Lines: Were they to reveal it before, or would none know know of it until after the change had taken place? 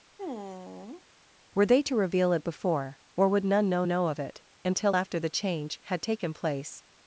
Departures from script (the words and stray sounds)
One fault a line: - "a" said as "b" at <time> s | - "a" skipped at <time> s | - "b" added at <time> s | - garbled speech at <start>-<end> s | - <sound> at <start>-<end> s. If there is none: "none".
- sigh at 0.2-1.0 s